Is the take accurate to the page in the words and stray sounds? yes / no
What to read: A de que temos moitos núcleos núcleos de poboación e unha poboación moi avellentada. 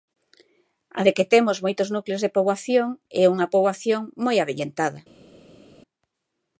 no